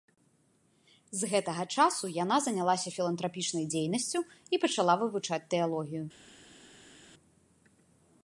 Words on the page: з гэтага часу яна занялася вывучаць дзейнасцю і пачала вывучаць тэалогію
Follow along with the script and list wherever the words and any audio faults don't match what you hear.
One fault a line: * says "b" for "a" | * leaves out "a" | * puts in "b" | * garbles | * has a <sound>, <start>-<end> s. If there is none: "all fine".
* says "філантрапічнай" for "вывучаць"